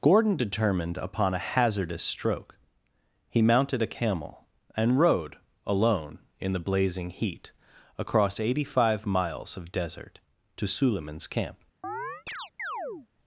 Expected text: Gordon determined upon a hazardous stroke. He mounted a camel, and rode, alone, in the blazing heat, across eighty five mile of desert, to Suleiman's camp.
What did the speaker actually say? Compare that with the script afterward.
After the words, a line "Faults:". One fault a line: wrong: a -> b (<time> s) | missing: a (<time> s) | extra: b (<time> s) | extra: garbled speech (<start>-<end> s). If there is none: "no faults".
Gordon determined upon a hazardous stroke. He mounted a camel, and rode, alone, in the blazing heat, across eighty five miles of desert, to Suleiman's camp.
Faults:
wrong: mile -> miles (9.1 s)